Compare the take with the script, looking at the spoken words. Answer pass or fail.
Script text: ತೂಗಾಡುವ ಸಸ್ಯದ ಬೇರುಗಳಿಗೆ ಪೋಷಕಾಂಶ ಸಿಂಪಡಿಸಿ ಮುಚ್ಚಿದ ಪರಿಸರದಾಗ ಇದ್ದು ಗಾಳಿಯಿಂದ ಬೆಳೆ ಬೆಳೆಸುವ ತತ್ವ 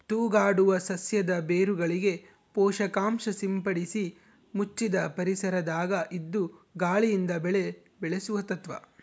pass